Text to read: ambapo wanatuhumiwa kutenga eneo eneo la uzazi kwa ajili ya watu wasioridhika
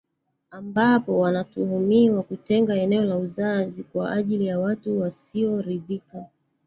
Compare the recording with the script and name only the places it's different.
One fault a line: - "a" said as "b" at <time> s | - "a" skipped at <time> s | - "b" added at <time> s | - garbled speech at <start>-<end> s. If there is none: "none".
- "eneo" skipped at 3.0 s